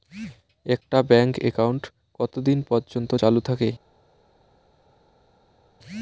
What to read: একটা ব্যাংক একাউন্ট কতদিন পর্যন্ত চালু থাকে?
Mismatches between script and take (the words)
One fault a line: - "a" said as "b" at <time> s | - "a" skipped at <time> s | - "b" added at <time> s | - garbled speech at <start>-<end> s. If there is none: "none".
none